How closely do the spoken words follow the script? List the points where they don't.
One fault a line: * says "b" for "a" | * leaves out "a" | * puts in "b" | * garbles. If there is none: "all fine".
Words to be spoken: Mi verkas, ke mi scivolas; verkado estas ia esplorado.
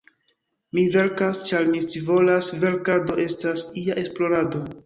* says "ĉar" for "ke"